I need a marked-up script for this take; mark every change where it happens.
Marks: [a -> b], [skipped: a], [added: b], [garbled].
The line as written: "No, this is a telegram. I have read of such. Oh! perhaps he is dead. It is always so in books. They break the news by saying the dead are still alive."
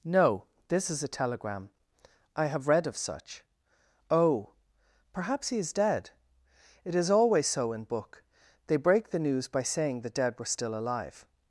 "No, this is a telegram. I have read of such. Oh! perhaps he is dead. It is always so in [books. -> book] They break the news by saying the dead [are -> were] still alive."